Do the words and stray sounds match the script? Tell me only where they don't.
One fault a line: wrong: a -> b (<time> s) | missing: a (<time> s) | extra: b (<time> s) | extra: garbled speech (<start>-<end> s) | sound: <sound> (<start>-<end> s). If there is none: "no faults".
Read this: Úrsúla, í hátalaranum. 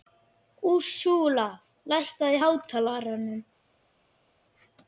extra: lækkaðu (1.9 s)